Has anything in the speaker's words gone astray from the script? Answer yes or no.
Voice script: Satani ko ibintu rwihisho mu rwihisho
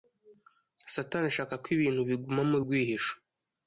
yes